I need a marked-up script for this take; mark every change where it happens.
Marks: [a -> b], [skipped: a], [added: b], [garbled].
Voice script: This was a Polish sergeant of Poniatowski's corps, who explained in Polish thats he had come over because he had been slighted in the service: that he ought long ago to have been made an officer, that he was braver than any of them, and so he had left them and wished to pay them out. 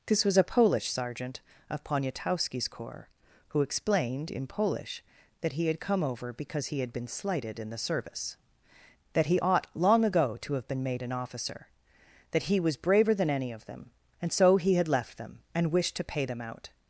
This was a Polish sergeant of Poniatowski's corps, who explained in Polish [thats -> that] he had come over because he had been slighted in the service: that he ought long ago to have been made an officer, that he was braver than any of them, and so he had left them and wished to pay them out.